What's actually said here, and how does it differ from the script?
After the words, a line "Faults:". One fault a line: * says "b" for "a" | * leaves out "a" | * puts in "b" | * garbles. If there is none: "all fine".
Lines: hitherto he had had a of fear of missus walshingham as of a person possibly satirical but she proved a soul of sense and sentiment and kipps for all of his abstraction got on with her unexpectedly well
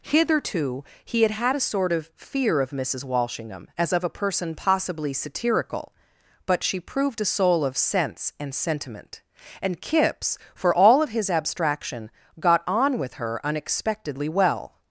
hitherto he had had a sort of fear of missus walshingham as of a person possibly satirical but she proved a soul of sense and sentiment and kipps for all of his abstraction got on with her unexpectedly well
Faults:
* puts in "sort"